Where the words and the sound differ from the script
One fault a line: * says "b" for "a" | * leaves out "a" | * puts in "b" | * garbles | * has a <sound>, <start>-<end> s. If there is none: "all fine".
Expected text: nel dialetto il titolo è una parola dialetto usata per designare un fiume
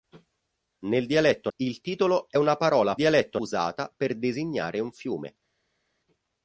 all fine